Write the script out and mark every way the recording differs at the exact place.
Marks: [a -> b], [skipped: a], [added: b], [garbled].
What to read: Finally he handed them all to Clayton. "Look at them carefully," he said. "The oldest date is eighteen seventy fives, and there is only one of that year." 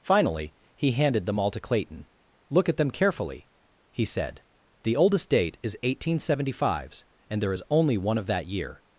Finally he handed them all to Clayton. "Look at them carefully," he said. "The oldest date is eighteen seventy fives, and there is only one of that year."